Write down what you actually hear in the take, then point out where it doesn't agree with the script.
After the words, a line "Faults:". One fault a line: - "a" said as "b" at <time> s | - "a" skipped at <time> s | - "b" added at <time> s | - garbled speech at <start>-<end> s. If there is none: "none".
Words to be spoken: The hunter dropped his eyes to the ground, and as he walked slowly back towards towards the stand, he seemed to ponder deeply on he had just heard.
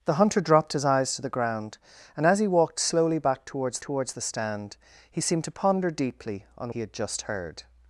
The hunter dropped his eyes to the ground, and as he walked slowly back towards towards the stand, he seemed to ponder deeply on he had just heard.
Faults:
none